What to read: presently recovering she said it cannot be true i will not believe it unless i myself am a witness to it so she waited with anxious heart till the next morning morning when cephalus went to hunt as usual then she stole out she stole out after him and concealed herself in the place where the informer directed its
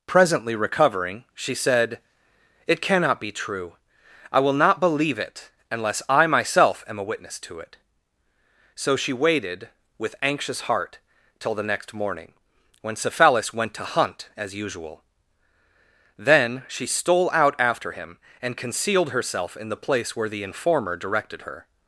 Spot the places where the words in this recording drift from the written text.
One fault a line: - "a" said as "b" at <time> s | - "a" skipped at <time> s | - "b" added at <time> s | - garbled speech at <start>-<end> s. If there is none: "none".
- "morning" skipped at 12.3 s
- "she stole out" skipped at 17.5 s
- "its" said as "her" at 21.4 s